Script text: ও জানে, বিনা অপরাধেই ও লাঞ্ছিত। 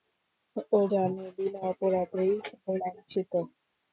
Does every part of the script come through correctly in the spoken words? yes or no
yes